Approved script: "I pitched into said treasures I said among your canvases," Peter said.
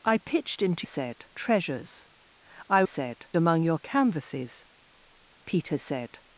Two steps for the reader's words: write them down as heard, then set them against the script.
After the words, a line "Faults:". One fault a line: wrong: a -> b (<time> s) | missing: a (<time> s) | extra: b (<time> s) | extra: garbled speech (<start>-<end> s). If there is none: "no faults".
"I pitched into said treasures I said among your canvases," Peter said.
Faults:
no faults